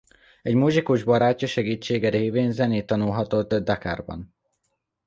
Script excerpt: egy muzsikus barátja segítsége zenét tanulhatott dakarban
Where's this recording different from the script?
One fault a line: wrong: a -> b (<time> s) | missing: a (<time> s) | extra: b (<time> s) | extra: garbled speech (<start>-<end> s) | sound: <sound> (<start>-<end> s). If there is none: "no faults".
extra: révén (2.1 s)